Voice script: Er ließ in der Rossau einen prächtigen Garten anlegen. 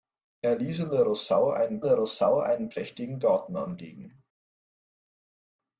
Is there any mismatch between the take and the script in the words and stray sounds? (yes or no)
yes